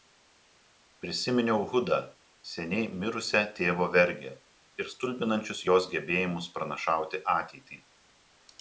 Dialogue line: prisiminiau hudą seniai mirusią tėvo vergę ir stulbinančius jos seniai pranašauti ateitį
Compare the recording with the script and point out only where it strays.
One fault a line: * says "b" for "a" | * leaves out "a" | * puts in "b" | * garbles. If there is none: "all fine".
* says "gebėjimus" for "seniai"